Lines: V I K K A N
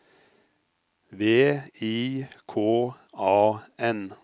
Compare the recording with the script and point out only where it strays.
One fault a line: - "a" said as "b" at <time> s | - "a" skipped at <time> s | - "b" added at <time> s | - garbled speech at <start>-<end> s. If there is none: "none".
- "K" skipped at 2.9 s